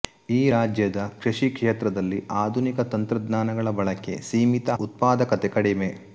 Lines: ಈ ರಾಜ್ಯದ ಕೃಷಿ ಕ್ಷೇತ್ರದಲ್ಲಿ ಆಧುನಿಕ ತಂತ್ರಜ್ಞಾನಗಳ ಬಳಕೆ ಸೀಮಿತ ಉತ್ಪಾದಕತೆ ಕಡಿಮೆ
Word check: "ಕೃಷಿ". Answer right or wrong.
right